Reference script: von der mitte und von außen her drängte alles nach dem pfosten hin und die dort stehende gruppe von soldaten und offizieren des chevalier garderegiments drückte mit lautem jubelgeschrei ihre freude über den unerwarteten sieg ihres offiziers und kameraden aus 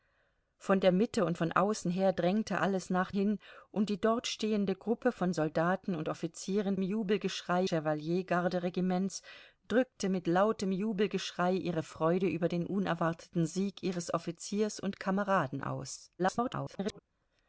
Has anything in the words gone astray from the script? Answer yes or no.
yes